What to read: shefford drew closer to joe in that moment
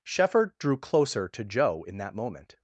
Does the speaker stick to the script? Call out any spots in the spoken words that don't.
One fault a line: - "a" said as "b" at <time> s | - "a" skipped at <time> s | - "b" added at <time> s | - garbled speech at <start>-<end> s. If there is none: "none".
none